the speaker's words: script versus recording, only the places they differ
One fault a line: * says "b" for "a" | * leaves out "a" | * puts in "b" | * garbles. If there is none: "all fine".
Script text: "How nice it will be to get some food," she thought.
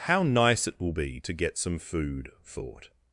* leaves out "she"